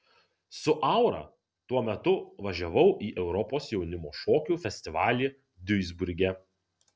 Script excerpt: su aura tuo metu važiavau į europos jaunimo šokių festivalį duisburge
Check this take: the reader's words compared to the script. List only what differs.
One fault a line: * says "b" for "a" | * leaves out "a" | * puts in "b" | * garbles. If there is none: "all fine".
all fine